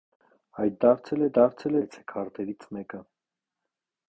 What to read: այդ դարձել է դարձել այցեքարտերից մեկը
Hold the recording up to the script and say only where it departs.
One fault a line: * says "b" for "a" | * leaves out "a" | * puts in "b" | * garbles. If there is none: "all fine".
all fine